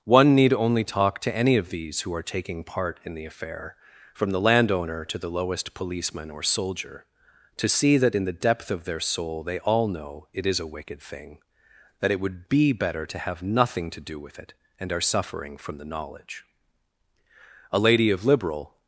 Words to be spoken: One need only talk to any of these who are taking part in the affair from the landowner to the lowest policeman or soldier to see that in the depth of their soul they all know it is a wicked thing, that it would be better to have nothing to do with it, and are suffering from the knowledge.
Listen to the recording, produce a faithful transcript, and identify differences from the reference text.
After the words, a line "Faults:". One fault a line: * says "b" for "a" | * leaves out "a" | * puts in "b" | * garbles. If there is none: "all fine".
One need only talk to any of these who are taking part in the affair from the landowner to the lowest policeman or soldier to see that in the depth of their soul they all know it is a wicked thing, that it would be better to have nothing to do with it, and are suffering from the knowledge. A lady of liberal
Faults:
* puts in "A lady of liberal"